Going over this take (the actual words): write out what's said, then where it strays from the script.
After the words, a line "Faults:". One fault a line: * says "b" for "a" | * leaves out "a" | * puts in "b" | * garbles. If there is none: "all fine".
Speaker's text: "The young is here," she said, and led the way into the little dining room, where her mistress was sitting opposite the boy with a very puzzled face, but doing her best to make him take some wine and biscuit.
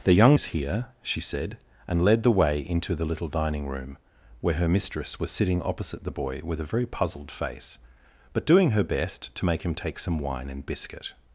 "The young is here," she said, and led the way into the little dining room, where her mistress was sitting opposite the boy with a very puzzled face, but doing her best to make him take some wine and biscuit.
Faults:
all fine